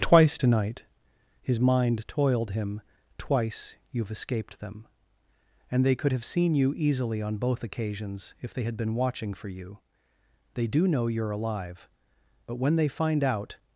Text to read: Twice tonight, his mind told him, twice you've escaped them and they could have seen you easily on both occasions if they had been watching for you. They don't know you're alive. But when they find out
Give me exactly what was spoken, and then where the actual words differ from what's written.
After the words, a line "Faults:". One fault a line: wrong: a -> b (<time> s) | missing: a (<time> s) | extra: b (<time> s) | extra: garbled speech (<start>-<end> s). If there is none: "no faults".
Twice tonight, his mind toiled him, twice you've escaped them and they could have seen you easily on both occasions if they had been watching for you. They do know you're alive. But when they find out
Faults:
wrong: told -> toiled (2.1 s)
wrong: don't -> do (10.7 s)